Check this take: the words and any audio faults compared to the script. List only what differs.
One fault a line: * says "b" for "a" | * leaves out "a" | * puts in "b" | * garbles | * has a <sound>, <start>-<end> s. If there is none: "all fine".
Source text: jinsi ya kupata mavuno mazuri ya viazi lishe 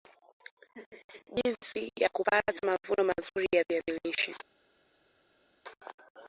all fine